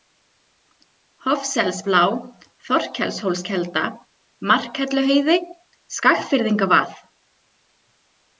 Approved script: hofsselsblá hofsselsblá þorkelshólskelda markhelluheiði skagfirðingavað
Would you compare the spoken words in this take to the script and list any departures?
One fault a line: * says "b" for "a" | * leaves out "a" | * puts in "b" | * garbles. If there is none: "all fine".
* leaves out "hofsselsblá"